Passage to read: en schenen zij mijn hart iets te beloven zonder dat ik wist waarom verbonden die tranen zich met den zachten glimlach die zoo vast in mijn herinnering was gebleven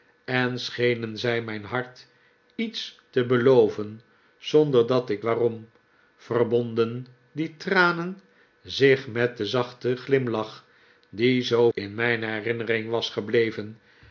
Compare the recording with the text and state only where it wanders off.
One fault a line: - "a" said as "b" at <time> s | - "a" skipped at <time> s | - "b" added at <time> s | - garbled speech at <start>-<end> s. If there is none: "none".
- "wist" skipped at 5.2 s
- "vast" skipped at 11.7 s